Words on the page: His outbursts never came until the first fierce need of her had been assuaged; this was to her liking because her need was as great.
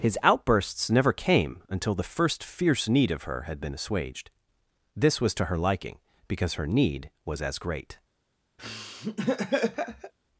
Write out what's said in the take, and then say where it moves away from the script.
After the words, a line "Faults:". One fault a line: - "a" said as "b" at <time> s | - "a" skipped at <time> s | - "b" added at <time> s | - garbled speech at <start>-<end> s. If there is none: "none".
His outbursts never came until the first fierce need of her had been assuaged; this was to her liking because her need was as great.
Faults:
none